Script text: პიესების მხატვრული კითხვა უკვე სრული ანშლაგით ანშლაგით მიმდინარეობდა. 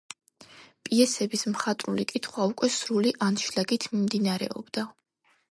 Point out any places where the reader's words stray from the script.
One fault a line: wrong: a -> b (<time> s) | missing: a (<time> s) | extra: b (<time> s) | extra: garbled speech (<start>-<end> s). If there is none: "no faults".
missing: ანშლაგით (3.9 s)